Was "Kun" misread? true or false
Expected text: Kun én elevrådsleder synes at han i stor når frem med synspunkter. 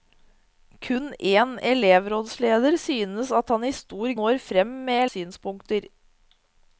false